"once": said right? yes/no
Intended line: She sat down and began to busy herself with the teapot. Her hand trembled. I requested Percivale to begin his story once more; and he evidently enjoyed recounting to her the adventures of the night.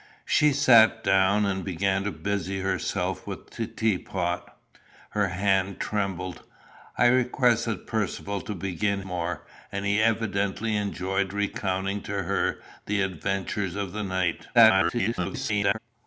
no